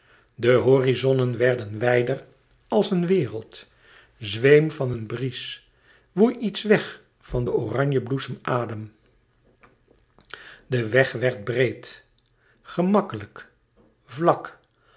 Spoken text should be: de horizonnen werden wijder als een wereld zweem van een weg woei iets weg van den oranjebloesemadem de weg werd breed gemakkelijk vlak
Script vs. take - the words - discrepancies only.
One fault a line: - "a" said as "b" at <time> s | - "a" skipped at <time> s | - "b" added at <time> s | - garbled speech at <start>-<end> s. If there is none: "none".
- "weg" said as "bries" at 5.0 s